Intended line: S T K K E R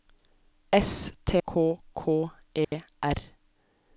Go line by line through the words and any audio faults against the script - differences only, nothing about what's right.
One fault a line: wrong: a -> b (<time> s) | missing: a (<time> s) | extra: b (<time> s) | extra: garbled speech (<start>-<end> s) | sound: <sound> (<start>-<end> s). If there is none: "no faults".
sound: dropout (2.6-2.7 s)